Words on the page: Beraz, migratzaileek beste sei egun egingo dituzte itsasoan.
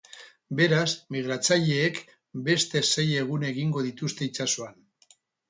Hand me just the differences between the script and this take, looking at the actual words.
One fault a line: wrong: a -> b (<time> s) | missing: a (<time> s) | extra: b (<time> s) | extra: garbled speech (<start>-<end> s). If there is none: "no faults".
no faults